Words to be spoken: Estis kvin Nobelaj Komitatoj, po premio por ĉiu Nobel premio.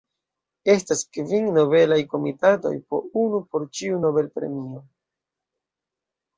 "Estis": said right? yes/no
no